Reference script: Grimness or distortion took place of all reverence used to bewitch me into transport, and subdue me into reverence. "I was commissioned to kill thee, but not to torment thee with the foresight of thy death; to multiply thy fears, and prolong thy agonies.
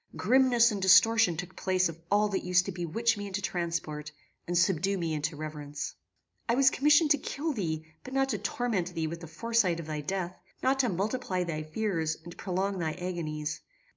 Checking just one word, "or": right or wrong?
wrong